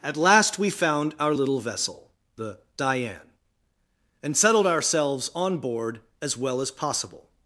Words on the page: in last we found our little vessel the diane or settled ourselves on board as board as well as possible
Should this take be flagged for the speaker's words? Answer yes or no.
yes